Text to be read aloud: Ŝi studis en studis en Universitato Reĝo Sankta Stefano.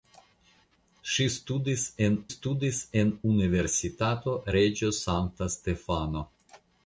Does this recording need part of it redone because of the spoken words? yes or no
no